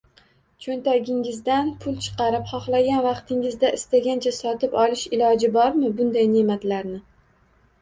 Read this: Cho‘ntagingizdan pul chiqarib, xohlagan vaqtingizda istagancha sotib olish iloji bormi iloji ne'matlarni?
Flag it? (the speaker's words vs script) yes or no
yes